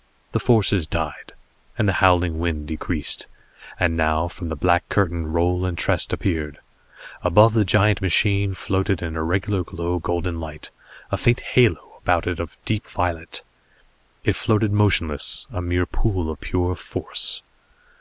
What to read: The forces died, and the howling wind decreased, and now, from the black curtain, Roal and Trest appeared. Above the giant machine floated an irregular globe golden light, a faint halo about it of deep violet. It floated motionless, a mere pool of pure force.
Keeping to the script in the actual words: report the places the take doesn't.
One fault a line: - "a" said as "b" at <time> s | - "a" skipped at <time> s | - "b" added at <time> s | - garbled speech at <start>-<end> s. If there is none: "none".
none